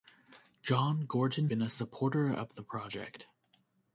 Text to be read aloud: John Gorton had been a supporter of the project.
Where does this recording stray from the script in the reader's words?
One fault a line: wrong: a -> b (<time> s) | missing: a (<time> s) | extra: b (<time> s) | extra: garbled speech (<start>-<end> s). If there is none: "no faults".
missing: had (1.5 s)